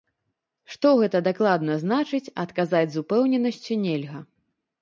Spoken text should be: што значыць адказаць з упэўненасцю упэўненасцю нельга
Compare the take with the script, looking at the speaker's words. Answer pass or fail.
fail